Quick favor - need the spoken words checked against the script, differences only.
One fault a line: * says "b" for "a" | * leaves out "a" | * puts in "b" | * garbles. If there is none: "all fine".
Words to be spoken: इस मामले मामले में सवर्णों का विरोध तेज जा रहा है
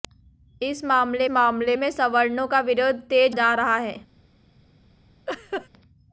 all fine